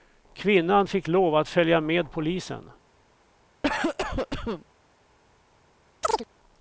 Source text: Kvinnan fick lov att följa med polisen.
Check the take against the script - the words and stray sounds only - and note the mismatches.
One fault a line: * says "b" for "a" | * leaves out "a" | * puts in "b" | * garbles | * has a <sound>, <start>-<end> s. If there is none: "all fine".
* has a cough, 3.6-4.7 s
* has a chirp, 6.0-6.3 s